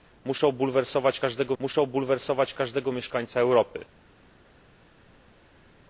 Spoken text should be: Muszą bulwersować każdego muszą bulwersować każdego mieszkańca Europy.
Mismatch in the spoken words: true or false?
false